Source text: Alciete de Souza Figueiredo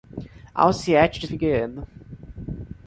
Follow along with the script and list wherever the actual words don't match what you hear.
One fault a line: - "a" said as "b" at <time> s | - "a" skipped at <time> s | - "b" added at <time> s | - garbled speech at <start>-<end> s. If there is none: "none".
- "Souza" skipped at 1.3 s